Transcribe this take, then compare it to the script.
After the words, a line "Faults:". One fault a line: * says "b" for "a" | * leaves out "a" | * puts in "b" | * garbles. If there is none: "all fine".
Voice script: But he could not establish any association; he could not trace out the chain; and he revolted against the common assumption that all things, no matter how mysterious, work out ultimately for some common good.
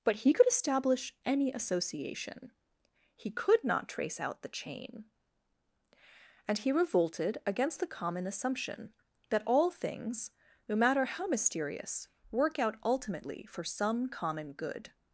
But he could establish any association; he could not trace out the chain; and he revolted against the common assumption that all things, no matter how mysterious, work out ultimately for some common good.
Faults:
* leaves out "not"